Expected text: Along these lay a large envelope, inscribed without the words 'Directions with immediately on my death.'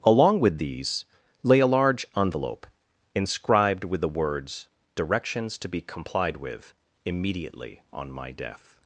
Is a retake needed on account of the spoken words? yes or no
yes